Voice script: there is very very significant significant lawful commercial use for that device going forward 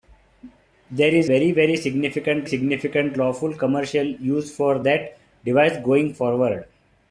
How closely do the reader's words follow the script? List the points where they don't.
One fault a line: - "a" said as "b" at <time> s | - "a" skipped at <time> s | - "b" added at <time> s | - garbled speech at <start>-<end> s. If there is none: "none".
none